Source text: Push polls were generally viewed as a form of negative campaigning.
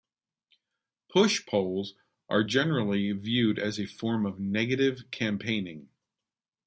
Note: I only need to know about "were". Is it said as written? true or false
false